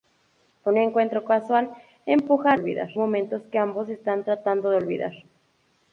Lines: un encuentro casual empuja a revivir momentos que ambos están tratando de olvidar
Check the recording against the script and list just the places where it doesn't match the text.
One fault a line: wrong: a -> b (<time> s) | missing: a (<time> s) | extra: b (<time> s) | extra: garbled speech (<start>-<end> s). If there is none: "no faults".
wrong: revivir -> olvidar (2.5 s)